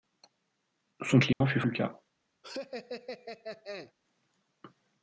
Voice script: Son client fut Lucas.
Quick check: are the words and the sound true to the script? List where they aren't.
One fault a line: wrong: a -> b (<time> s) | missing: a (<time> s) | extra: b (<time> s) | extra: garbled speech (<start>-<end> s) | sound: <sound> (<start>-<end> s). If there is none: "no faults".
sound: dropout (1.3-1.4 s)
sound: laugh (2.4-3.9 s)